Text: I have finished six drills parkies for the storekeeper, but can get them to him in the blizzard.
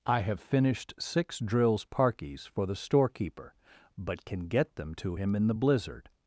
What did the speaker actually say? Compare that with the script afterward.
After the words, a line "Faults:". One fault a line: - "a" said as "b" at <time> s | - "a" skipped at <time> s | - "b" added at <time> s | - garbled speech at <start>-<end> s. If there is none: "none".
I have finished six drills parkies for the storekeeper, but can get them to him in the blizzard.
Faults:
none